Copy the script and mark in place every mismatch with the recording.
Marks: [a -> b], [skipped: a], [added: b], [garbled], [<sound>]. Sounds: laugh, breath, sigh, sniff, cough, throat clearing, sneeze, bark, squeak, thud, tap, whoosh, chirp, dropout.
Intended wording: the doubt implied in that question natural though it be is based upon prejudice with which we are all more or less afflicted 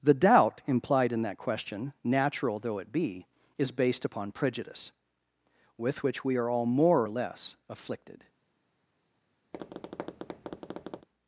the doubt implied in that question natural though it be is based upon prejudice with which we are all more or less afflicted [tap]